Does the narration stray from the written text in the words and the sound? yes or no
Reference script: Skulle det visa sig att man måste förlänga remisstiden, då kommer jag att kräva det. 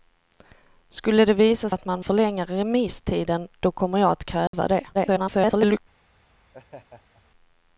yes